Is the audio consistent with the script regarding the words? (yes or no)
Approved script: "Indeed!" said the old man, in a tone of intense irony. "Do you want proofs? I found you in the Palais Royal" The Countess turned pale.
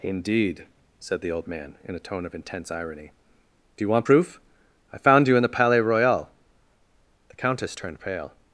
no